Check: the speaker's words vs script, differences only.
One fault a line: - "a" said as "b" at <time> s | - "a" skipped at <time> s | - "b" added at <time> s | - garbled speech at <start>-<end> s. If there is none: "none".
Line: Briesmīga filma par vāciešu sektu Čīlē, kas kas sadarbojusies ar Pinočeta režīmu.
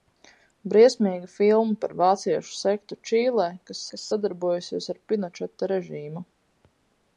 none